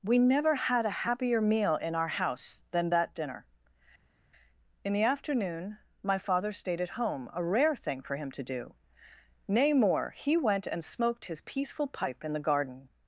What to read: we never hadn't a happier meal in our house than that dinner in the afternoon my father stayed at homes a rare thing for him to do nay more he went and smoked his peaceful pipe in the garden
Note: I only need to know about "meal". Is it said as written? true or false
true